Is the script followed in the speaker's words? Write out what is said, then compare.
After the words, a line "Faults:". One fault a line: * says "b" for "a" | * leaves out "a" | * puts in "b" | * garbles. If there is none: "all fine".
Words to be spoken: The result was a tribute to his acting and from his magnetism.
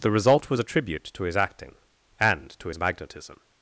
The result was a tribute to his acting and to his magnetism.
Faults:
* says "to" for "from"